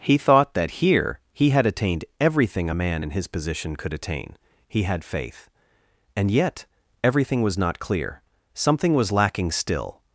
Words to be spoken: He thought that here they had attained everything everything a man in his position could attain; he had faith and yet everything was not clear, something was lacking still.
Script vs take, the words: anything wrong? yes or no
yes